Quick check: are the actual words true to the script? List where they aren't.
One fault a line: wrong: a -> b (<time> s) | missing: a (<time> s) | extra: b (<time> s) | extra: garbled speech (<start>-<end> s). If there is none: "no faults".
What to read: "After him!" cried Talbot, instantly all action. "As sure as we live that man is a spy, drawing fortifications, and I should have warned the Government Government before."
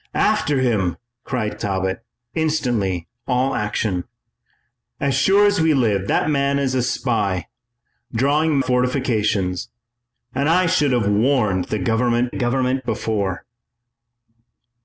no faults